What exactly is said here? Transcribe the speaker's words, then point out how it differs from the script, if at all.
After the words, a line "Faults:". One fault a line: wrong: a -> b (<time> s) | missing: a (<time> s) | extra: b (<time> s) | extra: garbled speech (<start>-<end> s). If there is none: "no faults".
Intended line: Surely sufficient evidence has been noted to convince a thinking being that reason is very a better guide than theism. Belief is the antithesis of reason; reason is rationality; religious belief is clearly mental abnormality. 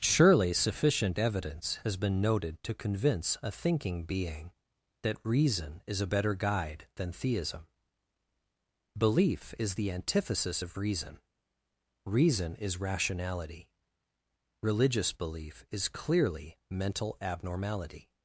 Surely sufficient evidence has been noted to convince a thinking being that reason is a better guide than theism. Belief is the antithesis of reason; reason is rationality; religious belief is clearly mental abnormality.
Faults:
missing: very (6.0 s)